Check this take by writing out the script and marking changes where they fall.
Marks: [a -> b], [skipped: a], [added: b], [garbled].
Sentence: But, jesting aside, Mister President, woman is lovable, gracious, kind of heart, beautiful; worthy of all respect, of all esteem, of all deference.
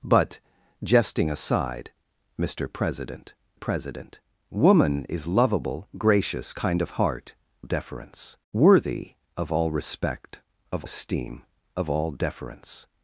But, jesting aside, Mister President, [added: President] woman is lovable, gracious, kind of heart, [beautiful; -> deference] worthy of all respect, of [skipped: all] esteem, of all deference.